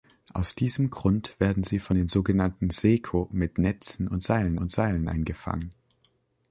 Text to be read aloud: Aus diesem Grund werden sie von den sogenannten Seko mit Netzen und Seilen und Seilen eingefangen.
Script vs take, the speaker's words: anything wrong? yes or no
no